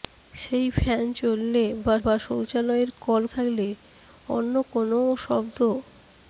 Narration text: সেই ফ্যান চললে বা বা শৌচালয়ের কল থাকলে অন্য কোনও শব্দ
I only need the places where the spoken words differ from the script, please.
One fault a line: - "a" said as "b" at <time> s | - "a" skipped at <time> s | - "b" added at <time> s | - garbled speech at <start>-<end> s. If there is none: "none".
none